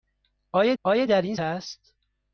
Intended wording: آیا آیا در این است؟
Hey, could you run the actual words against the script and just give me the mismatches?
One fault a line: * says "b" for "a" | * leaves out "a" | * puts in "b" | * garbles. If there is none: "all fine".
all fine